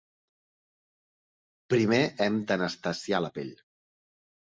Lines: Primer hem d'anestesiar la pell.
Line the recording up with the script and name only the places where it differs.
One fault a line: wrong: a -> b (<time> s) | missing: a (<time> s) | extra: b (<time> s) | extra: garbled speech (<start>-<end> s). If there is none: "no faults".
no faults